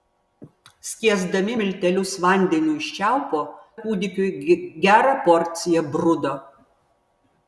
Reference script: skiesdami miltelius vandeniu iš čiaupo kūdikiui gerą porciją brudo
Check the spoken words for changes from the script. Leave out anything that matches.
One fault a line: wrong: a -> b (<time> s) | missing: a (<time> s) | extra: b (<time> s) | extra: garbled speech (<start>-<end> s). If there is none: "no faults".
no faults